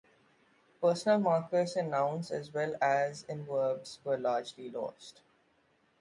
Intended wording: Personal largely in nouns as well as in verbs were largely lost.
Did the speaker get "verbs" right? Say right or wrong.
right